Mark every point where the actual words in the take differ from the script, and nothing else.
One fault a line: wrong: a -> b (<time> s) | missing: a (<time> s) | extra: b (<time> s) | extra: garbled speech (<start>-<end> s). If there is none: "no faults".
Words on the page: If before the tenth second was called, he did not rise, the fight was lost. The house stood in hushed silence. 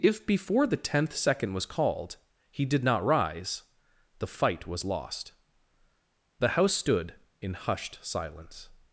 no faults